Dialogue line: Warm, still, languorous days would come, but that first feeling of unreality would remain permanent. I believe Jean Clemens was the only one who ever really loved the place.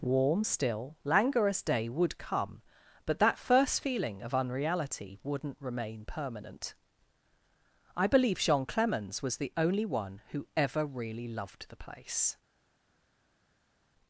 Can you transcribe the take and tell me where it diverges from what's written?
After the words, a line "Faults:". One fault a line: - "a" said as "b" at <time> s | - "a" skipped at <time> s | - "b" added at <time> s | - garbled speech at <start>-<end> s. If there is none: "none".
Warm, still, languorous day would come, but that first feeling of unreality wouldn't remain permanent. I believe Jean Clemens was the only one who ever really loved the place.
Faults:
- "days" said as "day" at 1.6 s
- "would" said as "wouldn't" at 5.2 s